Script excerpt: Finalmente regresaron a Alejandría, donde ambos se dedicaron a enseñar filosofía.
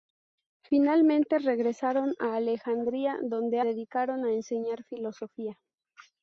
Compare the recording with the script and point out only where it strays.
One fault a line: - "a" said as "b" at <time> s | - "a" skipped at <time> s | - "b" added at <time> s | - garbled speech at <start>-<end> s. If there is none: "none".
- "ambos se" skipped at 3.6 s